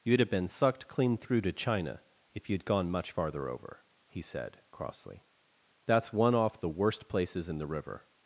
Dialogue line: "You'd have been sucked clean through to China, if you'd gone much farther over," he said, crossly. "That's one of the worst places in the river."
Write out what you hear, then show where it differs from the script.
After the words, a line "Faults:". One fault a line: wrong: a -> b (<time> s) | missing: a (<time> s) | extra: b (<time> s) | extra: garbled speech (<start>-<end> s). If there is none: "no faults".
"You'd have been sucked clean through to China, if you'd gone much farther over," he said, crossly. "That's one off the worst places in the river."
Faults:
wrong: of -> off (6.3 s)